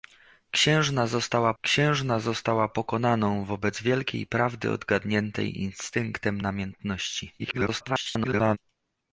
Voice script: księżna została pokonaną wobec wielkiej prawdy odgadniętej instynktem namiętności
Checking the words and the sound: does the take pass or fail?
fail